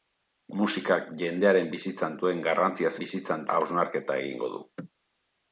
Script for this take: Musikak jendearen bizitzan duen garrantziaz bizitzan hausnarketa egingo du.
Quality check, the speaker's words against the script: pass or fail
pass